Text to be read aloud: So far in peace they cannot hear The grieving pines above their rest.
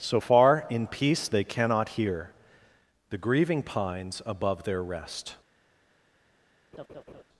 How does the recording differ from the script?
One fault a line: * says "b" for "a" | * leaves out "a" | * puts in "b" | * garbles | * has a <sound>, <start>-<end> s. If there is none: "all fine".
* has a laugh, 6.7-7.2 s